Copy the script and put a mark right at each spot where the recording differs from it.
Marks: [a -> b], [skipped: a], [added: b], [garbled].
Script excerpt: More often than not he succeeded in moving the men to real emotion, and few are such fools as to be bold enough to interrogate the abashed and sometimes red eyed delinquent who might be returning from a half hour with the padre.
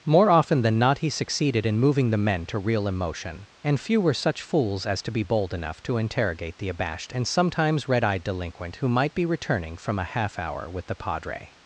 More often than not he succeeded in moving the men to real emotion, and few [are -> were] such fools as to be bold enough to interrogate the abashed and sometimes red eyed delinquent who might be returning from a half hour with the padre.